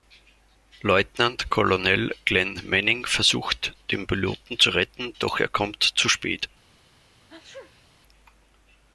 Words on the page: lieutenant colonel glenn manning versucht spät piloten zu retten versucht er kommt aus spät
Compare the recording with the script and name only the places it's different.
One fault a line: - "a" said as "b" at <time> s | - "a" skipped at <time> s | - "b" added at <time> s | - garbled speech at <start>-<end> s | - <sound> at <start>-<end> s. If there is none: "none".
- "spät" said as "den" at 3.9 s
- "versucht" said as "doch" at 5.2 s
- "aus" said as "zu" at 5.8 s
- sneeze at 7.3-7.9 s